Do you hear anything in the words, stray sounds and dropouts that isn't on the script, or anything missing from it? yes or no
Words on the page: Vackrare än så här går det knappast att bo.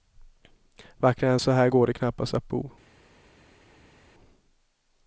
no